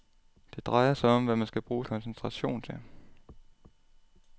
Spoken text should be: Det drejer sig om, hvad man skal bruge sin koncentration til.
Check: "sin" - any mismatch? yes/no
yes